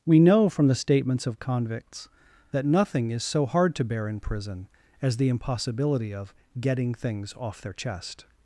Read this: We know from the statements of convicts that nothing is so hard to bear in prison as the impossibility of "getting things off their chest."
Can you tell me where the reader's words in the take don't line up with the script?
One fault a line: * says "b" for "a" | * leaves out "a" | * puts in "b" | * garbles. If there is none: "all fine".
all fine